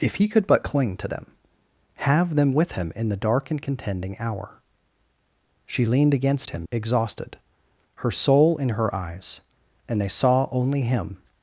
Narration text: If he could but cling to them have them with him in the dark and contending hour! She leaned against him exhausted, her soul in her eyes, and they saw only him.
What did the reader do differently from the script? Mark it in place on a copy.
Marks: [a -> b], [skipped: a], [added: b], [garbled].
If he could but cling to them have them with him in the dark and contending hour! She leaned against him exhausted, her soul in her eyes, and they saw only him.